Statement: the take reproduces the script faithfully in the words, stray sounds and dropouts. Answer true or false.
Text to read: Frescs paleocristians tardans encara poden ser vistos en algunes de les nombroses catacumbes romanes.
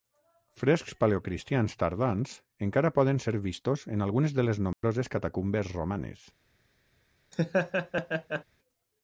false